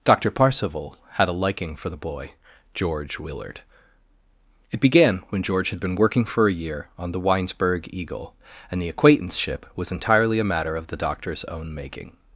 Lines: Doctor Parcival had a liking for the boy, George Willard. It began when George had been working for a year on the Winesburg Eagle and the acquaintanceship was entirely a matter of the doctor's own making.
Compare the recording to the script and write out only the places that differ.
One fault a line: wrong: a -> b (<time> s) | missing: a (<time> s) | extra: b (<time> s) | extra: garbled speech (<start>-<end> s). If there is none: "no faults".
no faults